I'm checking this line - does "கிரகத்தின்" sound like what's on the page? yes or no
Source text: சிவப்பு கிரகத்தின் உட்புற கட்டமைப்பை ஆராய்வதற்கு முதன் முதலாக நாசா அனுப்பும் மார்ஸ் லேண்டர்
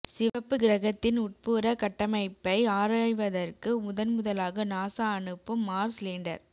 yes